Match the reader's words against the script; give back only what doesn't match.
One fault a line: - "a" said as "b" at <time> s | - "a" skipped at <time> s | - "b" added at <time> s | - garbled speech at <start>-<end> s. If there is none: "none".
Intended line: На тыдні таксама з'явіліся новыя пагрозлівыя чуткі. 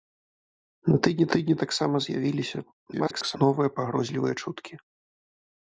- "тыдні" added at 1.4 s
- garbled speech at 2.9-3.4 s